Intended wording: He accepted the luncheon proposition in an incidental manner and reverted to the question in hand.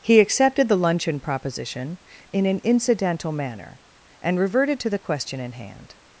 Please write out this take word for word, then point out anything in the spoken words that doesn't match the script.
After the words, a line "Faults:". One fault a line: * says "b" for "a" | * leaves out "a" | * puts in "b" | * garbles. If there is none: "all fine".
He accepted the luncheon proposition in an incidental manner and reverted to the question in hand.
Faults:
all fine